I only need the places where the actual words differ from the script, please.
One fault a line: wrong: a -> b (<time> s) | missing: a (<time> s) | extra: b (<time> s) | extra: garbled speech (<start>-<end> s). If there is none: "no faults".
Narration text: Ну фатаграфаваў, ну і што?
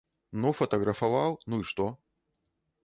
no faults